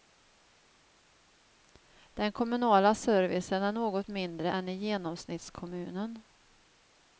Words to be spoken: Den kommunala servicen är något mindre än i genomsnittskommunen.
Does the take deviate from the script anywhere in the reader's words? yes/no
no